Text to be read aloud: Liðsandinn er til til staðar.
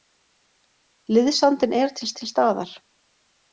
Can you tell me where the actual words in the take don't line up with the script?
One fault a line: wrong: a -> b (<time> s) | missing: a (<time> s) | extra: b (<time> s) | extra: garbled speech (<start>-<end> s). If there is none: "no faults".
no faults